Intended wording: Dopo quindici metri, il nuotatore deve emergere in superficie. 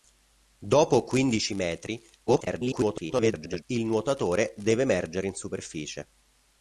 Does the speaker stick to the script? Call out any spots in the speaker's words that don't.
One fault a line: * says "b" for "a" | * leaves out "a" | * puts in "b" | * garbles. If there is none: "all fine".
* garbles